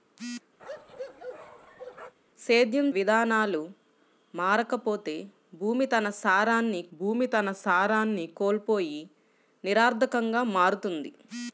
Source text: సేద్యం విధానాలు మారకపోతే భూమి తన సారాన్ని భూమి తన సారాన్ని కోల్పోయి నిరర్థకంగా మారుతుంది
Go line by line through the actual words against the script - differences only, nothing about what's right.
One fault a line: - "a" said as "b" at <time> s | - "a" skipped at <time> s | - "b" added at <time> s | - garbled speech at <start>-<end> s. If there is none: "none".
none